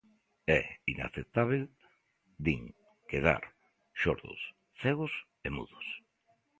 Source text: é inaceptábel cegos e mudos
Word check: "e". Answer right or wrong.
right